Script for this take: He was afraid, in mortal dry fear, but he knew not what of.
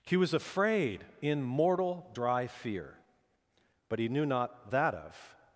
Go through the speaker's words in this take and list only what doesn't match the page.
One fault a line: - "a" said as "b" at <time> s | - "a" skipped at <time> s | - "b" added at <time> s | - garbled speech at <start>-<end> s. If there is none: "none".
- "what" said as "that" at 4.7 s